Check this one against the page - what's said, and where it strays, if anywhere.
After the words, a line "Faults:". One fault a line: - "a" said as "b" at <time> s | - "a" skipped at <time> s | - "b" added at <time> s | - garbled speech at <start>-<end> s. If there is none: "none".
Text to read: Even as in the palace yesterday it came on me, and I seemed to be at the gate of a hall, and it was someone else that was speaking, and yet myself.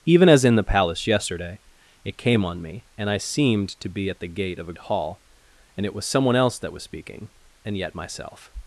Even as in the palace yesterday it came on me, and I seemed to be at the gate of a hall, and it was someone else that was speaking, and yet myself.
Faults:
none